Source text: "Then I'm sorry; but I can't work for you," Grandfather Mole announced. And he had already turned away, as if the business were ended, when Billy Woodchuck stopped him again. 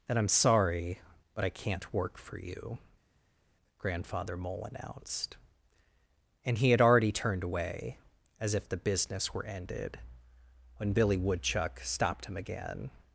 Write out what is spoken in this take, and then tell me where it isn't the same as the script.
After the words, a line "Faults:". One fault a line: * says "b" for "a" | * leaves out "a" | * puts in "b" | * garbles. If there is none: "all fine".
"Then I'm sorry; but I can't work for you," Grandfather Mole announced. And he had already turned away, as if the business were ended, when Billy Woodchuck stopped him again.
Faults:
all fine